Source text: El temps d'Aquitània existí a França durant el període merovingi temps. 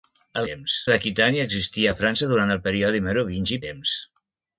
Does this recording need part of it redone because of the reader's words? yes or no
no